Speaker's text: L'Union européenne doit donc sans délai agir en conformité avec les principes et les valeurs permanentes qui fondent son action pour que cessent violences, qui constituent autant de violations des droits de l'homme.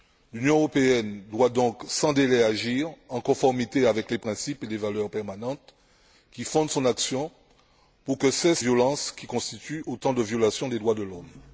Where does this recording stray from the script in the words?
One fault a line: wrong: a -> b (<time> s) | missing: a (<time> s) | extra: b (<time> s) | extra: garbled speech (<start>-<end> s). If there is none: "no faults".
no faults